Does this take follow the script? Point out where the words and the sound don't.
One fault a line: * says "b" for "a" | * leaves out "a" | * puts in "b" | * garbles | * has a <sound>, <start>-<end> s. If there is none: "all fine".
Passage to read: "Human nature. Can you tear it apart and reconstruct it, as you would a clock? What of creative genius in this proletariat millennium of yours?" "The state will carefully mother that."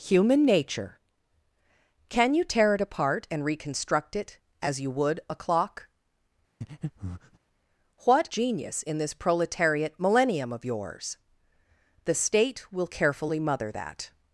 * has a breath, 6.6-7.4 s
* leaves out "of creative"